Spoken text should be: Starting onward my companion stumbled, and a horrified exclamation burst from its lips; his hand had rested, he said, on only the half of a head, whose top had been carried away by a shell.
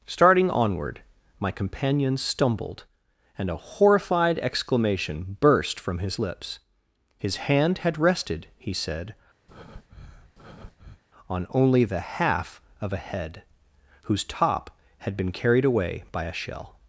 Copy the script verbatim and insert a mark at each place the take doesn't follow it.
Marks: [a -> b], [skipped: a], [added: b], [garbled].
Starting onward my companion stumbled, and a horrified exclamation burst from [its -> his] lips; his hand had rested, he said, on only the half of a head, whose top had been carried away by a shell.